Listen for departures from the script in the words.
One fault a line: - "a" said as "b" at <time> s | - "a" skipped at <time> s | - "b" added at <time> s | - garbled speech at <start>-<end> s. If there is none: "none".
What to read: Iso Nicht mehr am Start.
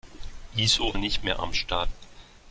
none